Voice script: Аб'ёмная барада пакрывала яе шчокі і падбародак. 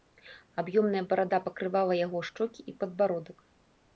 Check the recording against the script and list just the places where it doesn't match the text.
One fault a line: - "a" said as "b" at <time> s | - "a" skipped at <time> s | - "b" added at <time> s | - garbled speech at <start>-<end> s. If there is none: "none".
- "яе" said as "яго" at 2.1 s